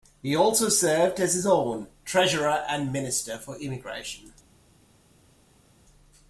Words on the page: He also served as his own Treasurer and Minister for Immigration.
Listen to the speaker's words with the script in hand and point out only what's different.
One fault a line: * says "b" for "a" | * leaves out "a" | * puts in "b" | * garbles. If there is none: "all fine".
all fine